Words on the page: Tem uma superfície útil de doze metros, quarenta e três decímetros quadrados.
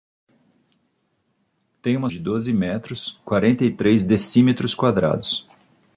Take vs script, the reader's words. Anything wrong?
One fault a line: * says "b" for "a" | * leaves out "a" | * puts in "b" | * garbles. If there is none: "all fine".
* leaves out "superfície útil"